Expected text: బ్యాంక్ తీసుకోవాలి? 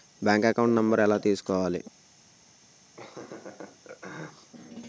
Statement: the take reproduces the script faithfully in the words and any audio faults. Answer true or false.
false